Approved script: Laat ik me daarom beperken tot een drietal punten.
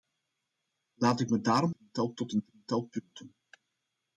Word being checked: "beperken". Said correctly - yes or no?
no